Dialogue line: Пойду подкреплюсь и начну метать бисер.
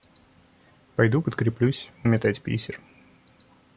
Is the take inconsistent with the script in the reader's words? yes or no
yes